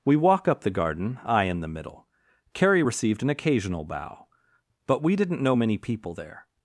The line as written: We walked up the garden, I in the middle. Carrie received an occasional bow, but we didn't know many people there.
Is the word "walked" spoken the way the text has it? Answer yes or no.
no